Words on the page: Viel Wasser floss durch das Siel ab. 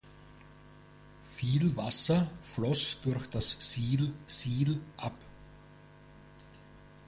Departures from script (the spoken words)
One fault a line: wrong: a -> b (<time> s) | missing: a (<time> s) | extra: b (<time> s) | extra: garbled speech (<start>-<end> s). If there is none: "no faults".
extra: Siel (4.3 s)